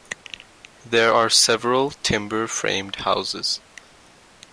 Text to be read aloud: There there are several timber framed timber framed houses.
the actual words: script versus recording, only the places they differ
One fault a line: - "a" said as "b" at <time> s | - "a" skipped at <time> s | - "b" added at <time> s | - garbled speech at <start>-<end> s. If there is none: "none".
- "there" skipped at 1.1 s
- "timber framed" skipped at 3.0 s